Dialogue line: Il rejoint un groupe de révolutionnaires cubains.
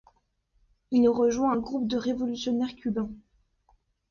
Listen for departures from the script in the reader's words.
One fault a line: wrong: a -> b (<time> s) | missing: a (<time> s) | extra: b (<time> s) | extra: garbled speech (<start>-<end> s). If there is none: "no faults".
no faults